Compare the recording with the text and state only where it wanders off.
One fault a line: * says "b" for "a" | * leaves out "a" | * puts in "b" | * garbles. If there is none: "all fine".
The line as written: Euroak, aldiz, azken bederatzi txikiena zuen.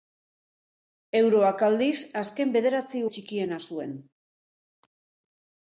all fine